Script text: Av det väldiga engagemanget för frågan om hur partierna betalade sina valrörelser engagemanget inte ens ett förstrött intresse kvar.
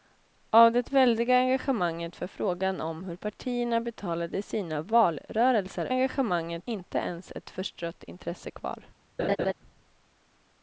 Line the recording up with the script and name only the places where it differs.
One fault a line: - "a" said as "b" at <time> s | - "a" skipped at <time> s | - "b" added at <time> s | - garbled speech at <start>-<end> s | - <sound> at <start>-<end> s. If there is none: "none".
- laugh at 9.2-9.5 s